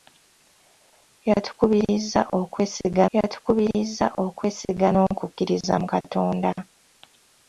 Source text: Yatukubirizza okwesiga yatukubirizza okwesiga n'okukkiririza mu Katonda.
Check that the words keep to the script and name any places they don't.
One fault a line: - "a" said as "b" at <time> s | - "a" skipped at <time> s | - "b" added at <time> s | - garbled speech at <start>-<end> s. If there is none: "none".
none